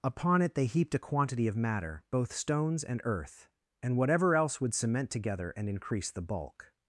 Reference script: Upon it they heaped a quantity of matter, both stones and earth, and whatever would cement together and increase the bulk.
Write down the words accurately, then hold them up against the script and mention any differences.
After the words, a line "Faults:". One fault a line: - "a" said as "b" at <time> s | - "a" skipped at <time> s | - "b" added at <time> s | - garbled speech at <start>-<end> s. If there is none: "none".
Upon it they heaped a quantity of matter, both stones and earth, and whatever else would cement together and increase the bulk.
Faults:
- "else" added at 4.3 s